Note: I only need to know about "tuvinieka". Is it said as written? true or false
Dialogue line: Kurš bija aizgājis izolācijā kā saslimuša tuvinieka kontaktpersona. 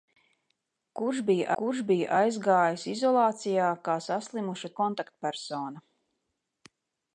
false